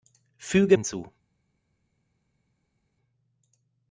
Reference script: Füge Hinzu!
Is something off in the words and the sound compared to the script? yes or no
no